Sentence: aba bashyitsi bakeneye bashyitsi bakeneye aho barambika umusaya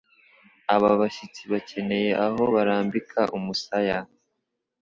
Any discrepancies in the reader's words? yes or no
yes